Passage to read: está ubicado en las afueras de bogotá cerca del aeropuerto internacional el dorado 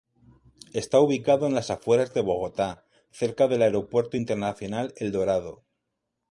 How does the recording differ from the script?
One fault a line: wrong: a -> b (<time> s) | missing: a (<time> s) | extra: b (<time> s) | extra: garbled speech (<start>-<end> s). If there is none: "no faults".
no faults